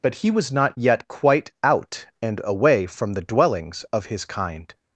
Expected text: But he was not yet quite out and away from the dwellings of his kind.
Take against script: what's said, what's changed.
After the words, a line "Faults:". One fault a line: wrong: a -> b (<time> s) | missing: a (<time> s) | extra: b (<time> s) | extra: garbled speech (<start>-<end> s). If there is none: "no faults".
But he was not yet quite out and away from the dwellings of his kind.
Faults:
no faults